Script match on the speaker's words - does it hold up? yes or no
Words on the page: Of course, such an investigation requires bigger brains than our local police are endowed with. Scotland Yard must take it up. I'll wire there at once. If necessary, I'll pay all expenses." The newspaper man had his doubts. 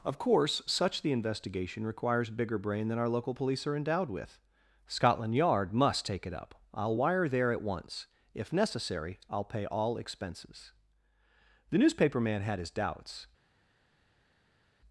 no